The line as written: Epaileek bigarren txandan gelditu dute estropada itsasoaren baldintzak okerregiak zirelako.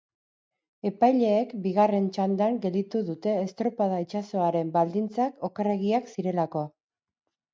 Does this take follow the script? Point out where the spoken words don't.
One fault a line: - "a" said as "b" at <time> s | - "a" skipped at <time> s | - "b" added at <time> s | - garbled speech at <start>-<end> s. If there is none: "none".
none